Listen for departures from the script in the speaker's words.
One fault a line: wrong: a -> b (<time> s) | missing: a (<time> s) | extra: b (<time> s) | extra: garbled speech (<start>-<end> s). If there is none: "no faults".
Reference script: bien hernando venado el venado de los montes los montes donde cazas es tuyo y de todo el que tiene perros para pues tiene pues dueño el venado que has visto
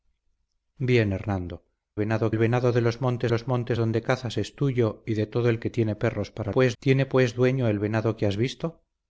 no faults